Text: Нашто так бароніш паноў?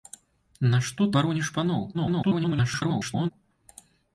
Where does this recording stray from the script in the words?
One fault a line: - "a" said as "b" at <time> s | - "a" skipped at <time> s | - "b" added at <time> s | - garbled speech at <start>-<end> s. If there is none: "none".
- "так" skipped at 1.1 s
- garbled speech at 1.9-3.3 s